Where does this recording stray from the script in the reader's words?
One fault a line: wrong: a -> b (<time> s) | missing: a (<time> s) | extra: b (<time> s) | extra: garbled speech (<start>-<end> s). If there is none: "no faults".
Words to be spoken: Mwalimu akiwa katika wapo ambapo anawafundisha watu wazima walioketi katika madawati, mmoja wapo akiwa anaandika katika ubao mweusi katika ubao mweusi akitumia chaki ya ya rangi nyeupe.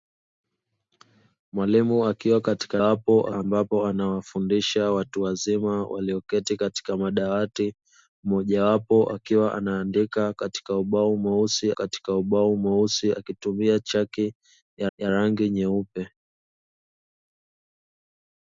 no faults